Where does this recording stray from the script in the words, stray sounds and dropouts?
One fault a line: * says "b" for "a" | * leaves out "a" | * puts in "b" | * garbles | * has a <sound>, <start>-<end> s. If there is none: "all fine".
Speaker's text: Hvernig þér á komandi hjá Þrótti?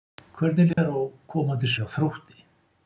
* has a dropout, 0.7-0.8 s